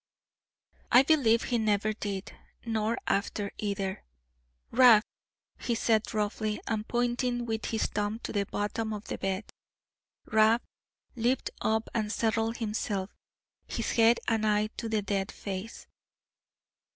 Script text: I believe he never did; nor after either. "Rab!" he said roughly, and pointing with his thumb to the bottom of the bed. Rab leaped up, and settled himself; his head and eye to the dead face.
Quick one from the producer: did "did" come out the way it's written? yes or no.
yes